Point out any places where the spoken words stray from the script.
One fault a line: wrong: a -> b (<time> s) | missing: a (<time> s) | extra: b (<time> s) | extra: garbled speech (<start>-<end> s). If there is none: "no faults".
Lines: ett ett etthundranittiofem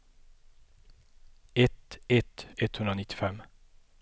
no faults